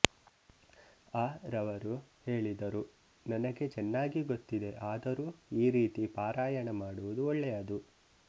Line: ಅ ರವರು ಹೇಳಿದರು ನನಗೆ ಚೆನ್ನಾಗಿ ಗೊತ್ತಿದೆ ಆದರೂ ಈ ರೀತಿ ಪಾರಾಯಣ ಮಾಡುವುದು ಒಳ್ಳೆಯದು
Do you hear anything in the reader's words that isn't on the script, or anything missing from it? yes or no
no